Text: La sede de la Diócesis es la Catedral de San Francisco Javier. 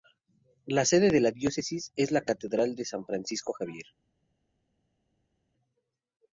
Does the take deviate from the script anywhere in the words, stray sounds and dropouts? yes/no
no